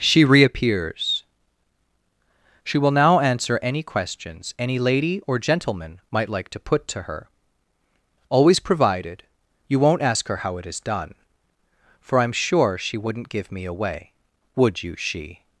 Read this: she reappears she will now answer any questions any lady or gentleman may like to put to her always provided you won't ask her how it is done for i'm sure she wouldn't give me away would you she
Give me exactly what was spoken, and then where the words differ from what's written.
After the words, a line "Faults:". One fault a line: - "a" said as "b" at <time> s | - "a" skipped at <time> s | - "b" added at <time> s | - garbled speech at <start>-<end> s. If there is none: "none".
she reappears she will now answer any questions any lady or gentleman might like to put to her always provided you won't ask her how it is done for i'm sure she wouldn't give me away would you she
Faults:
- "may" said as "might" at 6.1 s